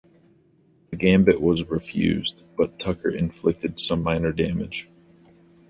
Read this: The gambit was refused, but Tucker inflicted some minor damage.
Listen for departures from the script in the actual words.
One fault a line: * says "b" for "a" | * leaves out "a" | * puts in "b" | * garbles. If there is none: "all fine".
all fine